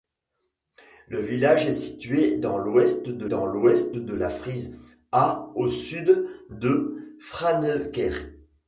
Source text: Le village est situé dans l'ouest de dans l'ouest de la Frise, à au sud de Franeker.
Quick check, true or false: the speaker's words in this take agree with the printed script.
true